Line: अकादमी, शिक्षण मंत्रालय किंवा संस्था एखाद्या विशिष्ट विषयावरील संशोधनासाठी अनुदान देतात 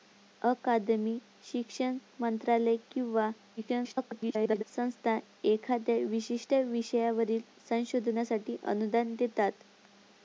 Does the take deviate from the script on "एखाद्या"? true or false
false